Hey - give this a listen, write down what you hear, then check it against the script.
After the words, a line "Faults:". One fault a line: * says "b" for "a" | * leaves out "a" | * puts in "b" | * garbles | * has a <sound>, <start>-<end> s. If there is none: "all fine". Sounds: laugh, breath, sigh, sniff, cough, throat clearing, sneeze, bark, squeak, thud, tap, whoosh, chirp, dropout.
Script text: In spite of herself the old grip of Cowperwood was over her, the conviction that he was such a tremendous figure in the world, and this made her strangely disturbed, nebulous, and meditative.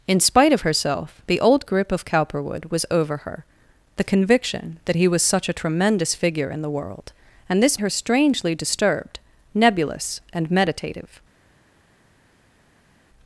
In spite of herself the old grip of Cowperwood was over her, the conviction that he was such a tremendous figure in the world, and this her strangely disturbed, nebulous, and meditative.
Faults:
* leaves out "made"